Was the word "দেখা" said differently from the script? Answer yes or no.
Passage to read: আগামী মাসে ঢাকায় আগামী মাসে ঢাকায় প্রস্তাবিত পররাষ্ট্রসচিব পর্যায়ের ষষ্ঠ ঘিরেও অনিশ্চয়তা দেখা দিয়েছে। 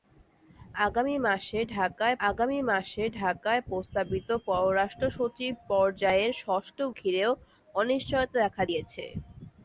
no